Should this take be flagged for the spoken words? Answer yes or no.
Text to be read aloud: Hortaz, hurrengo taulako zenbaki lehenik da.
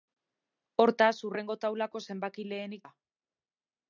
no